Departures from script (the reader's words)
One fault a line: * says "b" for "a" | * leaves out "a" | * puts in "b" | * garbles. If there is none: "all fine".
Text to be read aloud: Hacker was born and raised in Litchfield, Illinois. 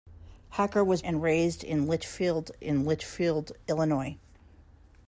* leaves out "born"
* puts in "in Litchfield"